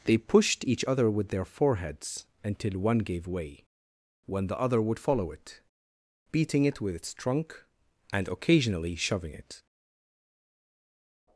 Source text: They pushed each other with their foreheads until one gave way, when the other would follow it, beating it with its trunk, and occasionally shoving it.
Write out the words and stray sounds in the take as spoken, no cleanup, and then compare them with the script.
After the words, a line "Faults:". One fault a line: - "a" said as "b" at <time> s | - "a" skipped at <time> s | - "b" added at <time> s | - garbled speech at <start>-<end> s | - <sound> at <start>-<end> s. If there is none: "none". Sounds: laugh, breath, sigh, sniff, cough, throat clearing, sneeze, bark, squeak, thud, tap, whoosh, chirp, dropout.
They pushed each other with their foreheads until one gave way, when the other would follow it, beating it with its trunk, and occasionally shoving it.
Faults:
none